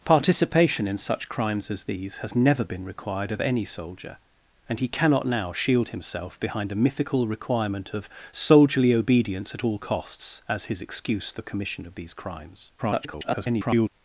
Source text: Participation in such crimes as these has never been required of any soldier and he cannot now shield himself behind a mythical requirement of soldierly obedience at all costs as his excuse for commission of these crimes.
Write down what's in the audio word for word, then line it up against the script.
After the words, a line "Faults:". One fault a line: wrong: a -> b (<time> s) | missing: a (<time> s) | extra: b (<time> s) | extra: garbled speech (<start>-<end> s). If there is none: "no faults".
Participation in such crimes as these has never been required of any soldier and he cannot now shield himself behind a mythical requirement of soldierly obedience at all costs as his excuse for commission of these crimes. [garbled]
Faults:
extra: garbled speech (12.8-13.9 s)